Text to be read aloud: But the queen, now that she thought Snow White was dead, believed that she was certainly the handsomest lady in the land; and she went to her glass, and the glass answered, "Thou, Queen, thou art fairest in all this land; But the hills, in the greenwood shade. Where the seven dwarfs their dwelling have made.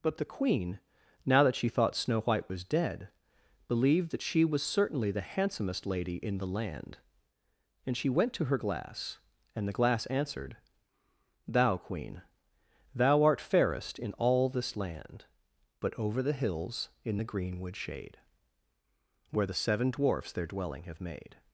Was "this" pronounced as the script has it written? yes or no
yes